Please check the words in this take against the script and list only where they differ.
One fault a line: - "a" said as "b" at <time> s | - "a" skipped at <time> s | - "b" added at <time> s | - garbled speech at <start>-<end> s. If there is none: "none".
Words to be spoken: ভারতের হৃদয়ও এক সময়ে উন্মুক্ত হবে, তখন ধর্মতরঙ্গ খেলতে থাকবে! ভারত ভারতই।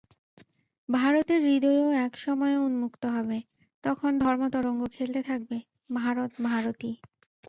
none